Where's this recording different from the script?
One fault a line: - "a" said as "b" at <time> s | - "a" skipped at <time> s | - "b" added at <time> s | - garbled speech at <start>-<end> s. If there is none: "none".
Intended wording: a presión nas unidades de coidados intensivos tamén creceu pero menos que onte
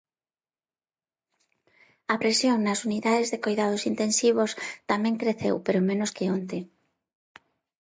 none